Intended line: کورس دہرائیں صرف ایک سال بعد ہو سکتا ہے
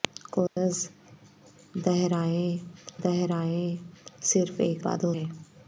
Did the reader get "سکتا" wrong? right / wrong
wrong